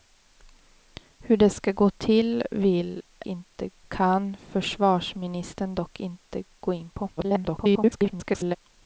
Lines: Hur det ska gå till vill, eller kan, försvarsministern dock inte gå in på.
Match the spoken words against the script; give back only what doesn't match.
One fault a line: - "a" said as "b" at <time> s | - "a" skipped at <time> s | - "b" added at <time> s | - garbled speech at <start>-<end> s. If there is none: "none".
- "eller" said as "inte" at 3.3 s
- garbled speech at 7.2-8.6 s